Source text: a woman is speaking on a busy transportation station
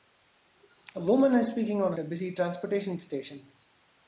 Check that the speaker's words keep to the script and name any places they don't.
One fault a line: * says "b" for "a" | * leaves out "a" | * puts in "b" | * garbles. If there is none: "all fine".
all fine